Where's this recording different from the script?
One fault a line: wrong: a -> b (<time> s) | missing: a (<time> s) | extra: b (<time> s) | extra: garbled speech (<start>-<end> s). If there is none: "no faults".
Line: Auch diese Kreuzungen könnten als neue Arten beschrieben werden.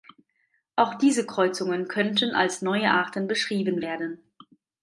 no faults